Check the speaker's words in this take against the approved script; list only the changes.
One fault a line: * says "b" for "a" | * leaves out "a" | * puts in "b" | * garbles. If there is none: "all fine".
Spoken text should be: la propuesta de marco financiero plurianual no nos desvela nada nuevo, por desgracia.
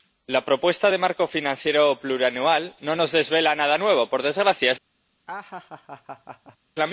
all fine